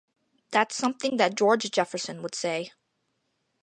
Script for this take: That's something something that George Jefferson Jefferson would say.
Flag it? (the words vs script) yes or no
yes